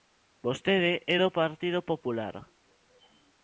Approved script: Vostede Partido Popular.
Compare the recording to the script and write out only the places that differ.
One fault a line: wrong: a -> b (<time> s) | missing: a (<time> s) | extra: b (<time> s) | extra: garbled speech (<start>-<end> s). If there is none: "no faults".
extra: é do (1.1 s)